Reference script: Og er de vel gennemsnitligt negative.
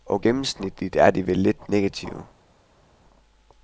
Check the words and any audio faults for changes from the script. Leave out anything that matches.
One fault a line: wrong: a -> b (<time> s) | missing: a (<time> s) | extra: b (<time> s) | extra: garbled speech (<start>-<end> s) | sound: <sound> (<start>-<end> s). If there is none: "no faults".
extra: gennemsnitligt (0.2 s)
wrong: gennemsnitligt -> lidt (1.4 s)